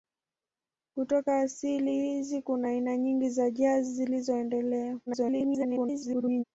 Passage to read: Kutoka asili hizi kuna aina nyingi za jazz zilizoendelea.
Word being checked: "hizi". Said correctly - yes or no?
yes